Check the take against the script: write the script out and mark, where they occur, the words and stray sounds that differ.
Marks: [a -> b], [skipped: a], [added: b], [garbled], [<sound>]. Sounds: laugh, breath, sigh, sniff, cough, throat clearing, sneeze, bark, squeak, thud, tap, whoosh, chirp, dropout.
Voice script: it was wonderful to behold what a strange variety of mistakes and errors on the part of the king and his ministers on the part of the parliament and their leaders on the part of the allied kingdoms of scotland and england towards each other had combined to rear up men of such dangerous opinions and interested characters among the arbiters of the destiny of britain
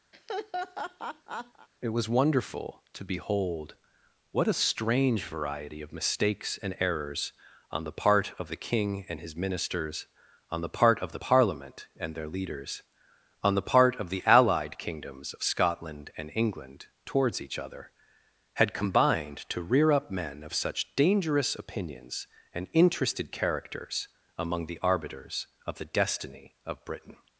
[laugh] it was wonderful to behold what a strange variety of mistakes and errors on the part of the king and his ministers on the part of the parliament and their leaders on the part of the allied kingdoms of scotland and england towards each other had combined to rear up men of such dangerous opinions and interested characters among the arbiters of the destiny of britain